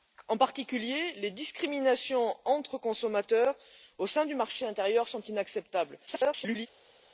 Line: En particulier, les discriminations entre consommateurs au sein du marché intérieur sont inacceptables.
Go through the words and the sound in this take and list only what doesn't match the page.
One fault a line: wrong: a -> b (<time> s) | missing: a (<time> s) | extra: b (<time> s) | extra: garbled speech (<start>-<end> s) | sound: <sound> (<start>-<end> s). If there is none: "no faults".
extra: garbled speech (6.1-6.7 s)